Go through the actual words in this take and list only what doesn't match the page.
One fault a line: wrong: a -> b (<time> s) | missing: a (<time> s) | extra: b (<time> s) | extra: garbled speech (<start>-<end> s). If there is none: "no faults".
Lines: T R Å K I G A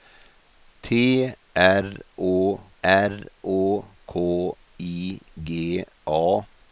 extra: R Å (2.8 s)